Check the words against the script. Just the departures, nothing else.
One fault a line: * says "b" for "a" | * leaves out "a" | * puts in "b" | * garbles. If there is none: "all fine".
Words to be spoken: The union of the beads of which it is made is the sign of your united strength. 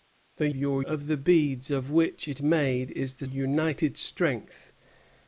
* says "your" for "union"
* leaves out "is"
* leaves out "sign of your"